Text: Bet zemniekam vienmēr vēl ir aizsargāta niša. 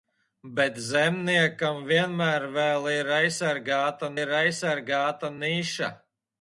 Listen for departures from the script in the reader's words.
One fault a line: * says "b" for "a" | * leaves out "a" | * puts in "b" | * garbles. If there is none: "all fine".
* puts in "ir aizsargāta"